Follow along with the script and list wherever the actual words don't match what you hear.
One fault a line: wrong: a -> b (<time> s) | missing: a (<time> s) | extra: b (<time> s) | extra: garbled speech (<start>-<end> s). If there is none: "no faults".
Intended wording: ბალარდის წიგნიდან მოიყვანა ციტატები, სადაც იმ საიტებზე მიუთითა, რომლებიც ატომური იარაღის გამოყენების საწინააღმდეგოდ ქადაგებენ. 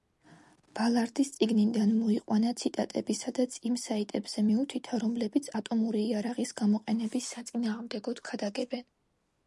no faults